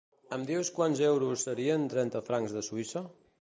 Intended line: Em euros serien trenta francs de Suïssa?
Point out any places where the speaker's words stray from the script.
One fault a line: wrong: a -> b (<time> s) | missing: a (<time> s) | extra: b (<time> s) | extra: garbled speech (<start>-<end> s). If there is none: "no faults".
extra: dius quants (0.5 s)